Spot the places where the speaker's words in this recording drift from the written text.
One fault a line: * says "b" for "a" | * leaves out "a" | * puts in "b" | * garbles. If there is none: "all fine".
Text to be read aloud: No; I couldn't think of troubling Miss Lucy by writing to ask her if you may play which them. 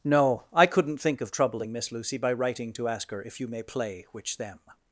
all fine